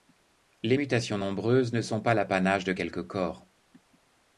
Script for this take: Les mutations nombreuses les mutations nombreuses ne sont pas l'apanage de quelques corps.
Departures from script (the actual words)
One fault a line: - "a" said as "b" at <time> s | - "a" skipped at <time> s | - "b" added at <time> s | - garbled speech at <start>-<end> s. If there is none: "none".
- "les mutations nombreuses" skipped at 1.7 s